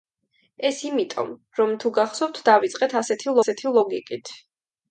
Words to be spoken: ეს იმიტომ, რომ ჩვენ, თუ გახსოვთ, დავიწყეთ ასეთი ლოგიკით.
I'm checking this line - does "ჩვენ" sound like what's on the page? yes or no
no